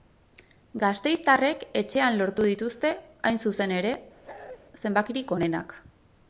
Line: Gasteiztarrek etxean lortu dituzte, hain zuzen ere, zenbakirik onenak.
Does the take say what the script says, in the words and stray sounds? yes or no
no